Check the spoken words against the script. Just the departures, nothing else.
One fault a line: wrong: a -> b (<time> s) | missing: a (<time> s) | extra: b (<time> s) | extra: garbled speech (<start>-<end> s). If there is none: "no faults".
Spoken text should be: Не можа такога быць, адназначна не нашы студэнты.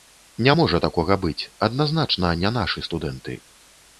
no faults